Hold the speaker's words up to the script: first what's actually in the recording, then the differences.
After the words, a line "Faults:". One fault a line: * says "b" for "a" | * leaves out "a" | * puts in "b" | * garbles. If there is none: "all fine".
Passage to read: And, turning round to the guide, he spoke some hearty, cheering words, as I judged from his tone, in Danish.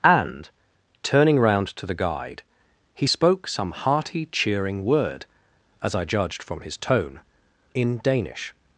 And, turning round to the guide, he spoke some hearty, cheering word, as I judged from his tone, in Danish.
Faults:
* says "word" for "words"